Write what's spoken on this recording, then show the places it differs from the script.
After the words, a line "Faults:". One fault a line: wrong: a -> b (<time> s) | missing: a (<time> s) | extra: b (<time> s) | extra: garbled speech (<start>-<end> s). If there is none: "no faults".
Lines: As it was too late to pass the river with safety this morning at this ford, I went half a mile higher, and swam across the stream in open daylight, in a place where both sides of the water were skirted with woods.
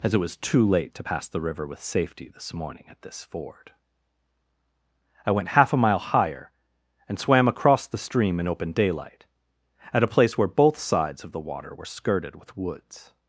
As it was too late to pass the river with safety this morning at this ford, I went half a mile higher, and swam across the stream in open daylight, at a place where both sides of the water were skirted with woods.
Faults:
wrong: in -> at (9.9 s)